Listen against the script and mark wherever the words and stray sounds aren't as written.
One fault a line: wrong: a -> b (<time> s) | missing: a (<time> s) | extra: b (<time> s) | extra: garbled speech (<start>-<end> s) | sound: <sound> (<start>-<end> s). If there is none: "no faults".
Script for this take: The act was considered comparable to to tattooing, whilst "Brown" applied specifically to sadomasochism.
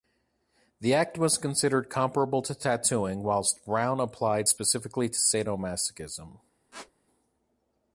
missing: to (2.5 s)
sound: squeak (6.7-6.9 s)